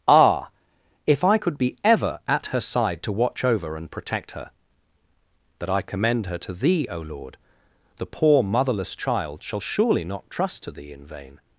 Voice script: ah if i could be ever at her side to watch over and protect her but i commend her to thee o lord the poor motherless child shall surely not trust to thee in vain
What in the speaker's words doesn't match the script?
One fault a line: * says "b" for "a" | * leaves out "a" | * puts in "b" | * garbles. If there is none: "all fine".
* says "that" for "but"